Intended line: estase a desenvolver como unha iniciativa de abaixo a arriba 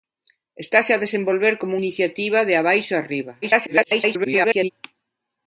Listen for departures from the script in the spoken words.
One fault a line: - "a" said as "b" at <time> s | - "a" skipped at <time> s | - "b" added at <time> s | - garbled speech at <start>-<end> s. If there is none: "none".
- "unha" skipped at 1.7 s
- garbled speech at 3.4-4.7 s